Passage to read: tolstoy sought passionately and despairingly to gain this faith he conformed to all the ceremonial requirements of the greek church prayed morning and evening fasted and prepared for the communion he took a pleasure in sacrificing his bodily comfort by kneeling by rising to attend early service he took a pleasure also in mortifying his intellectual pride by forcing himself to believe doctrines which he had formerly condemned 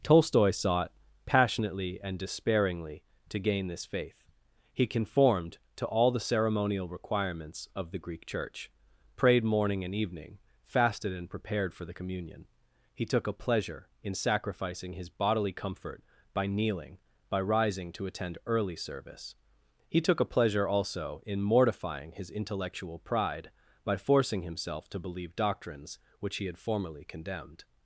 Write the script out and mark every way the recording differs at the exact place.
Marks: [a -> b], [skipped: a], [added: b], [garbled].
tolstoy sought passionately and despairingly to gain this faith he conformed to all the ceremonial requirements of the greek church prayed morning and evening fasted and prepared for the communion he took a pleasure in sacrificing his bodily comfort by kneeling by rising to attend early service he took a pleasure also in mortifying his intellectual pride by forcing himself to believe doctrines which he had formerly condemned